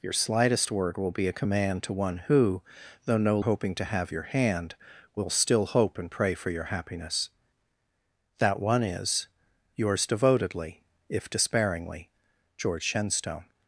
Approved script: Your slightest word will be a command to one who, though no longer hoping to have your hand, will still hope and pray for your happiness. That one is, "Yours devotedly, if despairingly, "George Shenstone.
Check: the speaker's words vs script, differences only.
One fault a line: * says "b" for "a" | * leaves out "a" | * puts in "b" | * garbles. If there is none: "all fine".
* leaves out "longer"